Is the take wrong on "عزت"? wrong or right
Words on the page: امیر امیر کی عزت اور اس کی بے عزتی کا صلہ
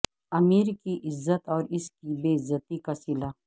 right